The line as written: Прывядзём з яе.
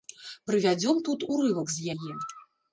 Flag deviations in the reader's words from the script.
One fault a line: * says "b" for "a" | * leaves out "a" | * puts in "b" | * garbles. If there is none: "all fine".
* puts in "тут урывак"